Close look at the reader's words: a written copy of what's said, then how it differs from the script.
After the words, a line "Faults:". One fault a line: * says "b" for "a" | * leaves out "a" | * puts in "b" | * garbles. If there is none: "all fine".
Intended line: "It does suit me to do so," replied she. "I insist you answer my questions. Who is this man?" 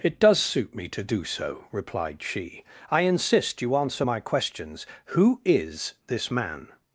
"It does suit me to do so," replied she. "I insist you answer my questions. Who is this man?"
Faults:
all fine